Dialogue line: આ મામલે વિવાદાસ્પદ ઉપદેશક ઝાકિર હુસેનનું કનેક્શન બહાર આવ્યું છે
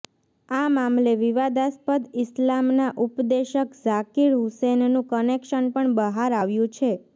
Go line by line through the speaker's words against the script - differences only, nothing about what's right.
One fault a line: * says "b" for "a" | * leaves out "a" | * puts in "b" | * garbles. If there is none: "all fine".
* puts in "ઈસ્લામના"
* puts in "પણ"